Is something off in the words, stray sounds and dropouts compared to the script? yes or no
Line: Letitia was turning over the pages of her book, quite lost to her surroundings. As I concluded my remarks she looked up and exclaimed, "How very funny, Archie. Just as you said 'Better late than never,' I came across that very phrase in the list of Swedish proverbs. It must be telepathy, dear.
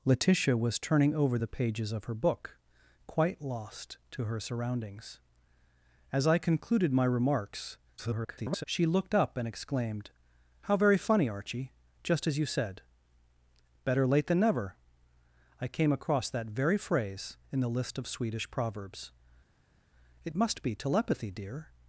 yes